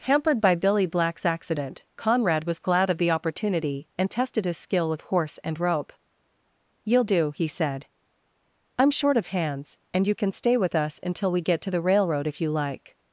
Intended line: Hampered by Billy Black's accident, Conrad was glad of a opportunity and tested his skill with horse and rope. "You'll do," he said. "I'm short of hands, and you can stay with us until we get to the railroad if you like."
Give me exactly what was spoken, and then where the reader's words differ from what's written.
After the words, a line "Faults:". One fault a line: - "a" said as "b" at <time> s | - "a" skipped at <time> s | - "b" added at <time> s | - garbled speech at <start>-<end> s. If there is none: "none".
Hampered by Billy Black's accident, Conrad was glad of the opportunity and tested his skill with horse and rope. "You'll do," he said. "I'm short of hands, and you can stay with us until we get to the railroad if you like."
Faults:
- "a" said as "the" at 3.0 s